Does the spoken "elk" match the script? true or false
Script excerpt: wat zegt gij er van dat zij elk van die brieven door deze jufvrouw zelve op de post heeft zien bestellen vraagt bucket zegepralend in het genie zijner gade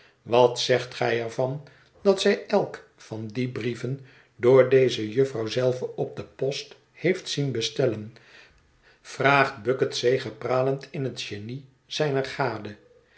true